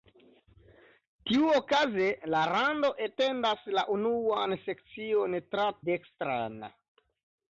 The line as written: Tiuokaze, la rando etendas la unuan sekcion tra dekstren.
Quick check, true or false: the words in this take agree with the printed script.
true